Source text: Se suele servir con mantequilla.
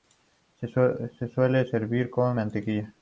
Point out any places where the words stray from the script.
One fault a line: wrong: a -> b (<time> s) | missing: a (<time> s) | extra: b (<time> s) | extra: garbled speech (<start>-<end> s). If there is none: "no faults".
no faults